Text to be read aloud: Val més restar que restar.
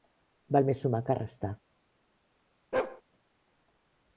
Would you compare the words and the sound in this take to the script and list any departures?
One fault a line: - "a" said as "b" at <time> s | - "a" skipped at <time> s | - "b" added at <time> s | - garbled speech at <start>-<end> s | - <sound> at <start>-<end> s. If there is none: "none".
- "restar" said as "sumar" at 0.8 s
- bark at 2.7-3.0 s